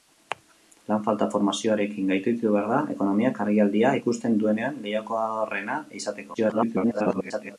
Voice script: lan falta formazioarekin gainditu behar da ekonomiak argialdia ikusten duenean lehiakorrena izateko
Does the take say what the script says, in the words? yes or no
no